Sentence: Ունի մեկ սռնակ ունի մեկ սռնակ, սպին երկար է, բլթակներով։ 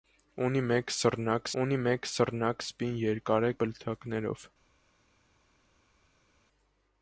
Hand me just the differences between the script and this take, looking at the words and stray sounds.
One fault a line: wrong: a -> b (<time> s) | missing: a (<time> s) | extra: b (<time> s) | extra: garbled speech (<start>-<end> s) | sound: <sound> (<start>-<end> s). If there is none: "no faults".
no faults